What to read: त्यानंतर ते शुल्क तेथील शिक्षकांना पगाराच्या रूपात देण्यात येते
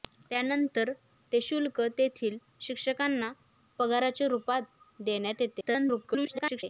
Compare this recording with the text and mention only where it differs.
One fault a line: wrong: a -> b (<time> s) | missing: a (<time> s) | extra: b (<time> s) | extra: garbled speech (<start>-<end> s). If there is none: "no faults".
extra: garbled speech (5.6-6.6 s)